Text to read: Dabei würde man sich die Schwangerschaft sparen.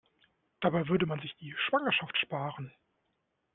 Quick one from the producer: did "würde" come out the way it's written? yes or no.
yes